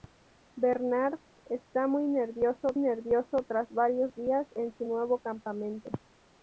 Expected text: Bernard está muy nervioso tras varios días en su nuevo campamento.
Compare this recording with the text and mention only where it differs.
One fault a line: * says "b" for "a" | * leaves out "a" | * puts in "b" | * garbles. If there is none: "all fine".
* puts in "nervioso"